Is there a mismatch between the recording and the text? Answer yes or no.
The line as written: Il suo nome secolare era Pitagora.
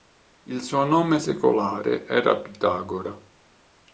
no